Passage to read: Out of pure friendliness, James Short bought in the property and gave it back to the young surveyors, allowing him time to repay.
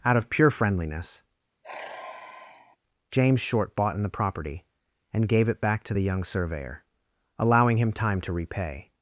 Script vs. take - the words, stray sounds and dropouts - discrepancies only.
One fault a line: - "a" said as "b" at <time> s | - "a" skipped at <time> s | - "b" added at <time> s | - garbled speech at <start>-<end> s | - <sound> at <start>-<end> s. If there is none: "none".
- sigh at 1.6-2.8 s
- "surveyors" said as "surveyor" at 6.2 s